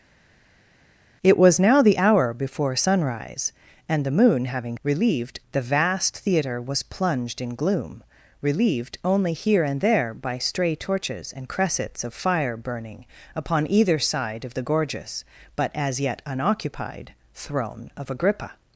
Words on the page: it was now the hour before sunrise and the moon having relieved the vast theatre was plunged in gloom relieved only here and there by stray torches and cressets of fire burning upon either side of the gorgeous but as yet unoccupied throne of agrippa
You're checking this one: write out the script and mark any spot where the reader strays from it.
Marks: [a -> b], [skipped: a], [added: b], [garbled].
it was now the hour before sunrise and the moon having relieved the vast theatre was plunged in gloom relieved only here and there by stray torches and cressets of fire burning upon either side of the gorgeous but as yet unoccupied throne of agrippa